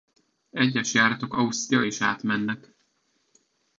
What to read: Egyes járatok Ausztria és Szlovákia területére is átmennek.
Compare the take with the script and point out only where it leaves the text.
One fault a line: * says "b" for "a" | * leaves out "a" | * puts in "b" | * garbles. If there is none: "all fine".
* leaves out "és Szlovákia területére"